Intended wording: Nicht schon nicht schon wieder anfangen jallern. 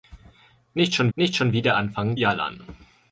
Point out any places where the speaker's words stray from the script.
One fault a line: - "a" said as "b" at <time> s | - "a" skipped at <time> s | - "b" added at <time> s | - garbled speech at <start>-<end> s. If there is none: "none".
none